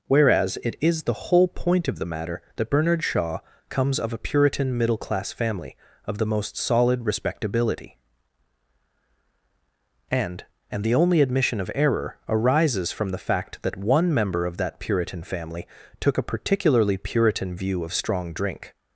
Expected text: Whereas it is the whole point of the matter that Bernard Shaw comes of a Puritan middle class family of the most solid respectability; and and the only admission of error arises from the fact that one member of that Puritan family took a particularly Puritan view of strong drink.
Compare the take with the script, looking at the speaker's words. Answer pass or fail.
pass